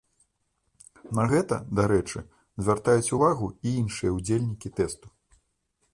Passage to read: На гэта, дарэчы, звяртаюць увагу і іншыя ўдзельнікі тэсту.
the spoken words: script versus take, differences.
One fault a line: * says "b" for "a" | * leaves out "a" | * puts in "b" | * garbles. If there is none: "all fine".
all fine